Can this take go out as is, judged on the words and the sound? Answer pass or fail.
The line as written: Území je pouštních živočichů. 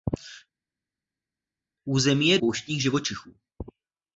pass